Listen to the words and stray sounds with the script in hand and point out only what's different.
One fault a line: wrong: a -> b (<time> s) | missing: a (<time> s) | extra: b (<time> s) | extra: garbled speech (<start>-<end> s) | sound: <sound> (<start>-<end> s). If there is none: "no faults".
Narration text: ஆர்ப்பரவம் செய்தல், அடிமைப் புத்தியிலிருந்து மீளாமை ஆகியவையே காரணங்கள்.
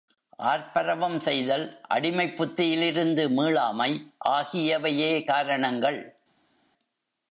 no faults